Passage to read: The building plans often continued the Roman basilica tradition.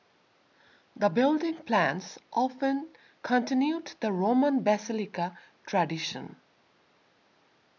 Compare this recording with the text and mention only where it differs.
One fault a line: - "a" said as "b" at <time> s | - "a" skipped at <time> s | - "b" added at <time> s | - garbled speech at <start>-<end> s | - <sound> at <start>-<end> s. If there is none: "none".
none